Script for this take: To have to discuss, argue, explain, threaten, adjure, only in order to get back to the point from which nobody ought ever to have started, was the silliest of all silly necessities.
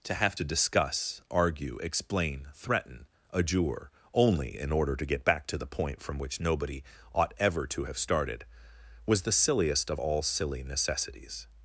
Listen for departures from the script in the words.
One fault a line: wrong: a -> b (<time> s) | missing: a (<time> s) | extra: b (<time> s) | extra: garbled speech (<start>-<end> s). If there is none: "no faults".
no faults